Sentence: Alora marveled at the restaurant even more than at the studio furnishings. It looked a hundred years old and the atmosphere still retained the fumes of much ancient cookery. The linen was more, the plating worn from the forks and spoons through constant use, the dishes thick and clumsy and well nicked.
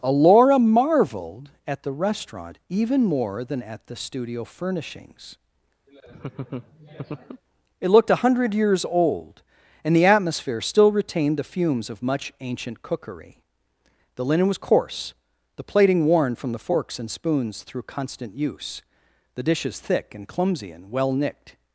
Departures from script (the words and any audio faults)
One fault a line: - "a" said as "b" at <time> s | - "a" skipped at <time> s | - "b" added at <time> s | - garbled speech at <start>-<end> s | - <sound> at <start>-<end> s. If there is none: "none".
- laugh at 5.9-7.4 s
- "more" said as "coarse" at 14.6 s